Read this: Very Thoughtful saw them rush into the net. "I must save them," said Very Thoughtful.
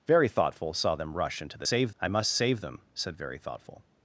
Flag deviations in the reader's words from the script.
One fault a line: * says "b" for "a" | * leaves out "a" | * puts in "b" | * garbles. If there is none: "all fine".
* says "save" for "net"